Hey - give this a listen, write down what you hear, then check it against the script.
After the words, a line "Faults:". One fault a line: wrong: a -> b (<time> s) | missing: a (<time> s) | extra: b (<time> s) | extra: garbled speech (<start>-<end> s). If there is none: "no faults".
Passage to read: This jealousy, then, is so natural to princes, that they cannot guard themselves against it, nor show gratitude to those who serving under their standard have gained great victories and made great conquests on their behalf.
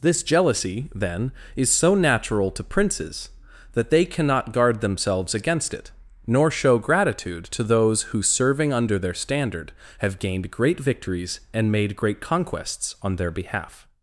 This jealousy, then, is so natural to princes, that they cannot guard themselves against it, nor show gratitude to those who serving under their standard have gained great victories and made great conquests on their behalf.
Faults:
no faults